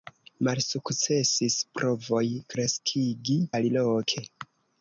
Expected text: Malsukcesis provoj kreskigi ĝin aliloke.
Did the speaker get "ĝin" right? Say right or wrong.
wrong